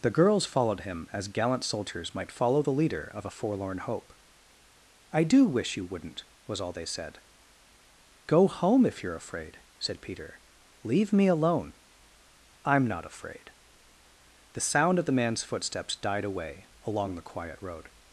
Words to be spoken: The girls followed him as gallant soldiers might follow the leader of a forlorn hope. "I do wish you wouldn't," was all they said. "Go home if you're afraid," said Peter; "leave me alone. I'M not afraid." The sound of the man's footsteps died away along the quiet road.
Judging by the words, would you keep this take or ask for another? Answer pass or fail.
pass